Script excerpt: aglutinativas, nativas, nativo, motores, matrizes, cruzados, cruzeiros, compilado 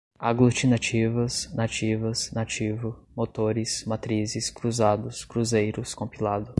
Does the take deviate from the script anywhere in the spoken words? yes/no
no